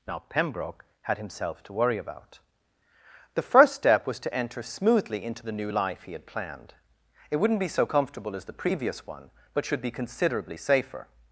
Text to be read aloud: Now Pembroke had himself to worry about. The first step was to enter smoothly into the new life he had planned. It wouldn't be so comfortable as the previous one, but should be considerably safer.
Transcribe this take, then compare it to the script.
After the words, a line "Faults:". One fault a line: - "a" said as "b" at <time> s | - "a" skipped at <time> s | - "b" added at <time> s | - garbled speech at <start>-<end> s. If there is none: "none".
Now Pembroke had himself to worry about. The first step was to enter smoothly into the new life he had planned. It wouldn't be so comfortable as the previous one, but should be considerably safer.
Faults:
none